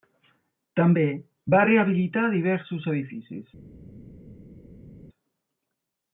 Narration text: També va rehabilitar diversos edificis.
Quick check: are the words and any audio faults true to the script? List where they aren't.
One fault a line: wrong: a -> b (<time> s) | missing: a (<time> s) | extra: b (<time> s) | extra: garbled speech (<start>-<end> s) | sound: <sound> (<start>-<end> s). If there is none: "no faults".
no faults